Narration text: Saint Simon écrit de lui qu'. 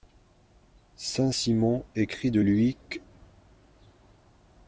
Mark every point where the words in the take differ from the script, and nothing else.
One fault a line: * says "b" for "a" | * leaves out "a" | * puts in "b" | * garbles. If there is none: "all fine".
all fine